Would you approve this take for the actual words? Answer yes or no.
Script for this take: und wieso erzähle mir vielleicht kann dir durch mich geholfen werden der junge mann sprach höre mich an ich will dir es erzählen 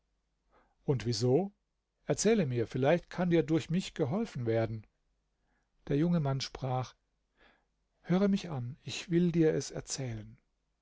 yes